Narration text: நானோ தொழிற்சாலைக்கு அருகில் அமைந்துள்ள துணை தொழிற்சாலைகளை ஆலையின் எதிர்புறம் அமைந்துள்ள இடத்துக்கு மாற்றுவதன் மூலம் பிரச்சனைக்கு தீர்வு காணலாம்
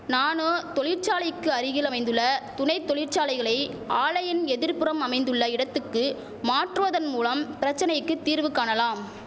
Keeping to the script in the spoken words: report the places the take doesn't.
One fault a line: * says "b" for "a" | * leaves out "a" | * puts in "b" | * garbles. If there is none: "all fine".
all fine